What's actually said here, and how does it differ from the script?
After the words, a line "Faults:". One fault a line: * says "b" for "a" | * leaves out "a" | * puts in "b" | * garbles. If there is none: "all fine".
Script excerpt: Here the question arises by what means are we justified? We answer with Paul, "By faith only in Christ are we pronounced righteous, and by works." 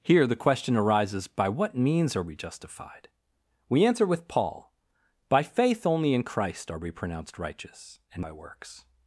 Here the question arises by what means are we justified? We answer with Paul, "By faith only in Christ are we pronounced righteous, and by works."
Faults:
all fine